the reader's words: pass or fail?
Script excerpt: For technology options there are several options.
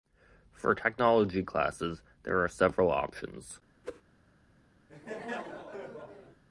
fail